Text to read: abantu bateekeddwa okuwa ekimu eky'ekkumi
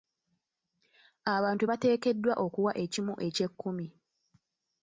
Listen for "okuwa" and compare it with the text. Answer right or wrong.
right